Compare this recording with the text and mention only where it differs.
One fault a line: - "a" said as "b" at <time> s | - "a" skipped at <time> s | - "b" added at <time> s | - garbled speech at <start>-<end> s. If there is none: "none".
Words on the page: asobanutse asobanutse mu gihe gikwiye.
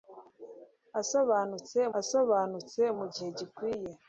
none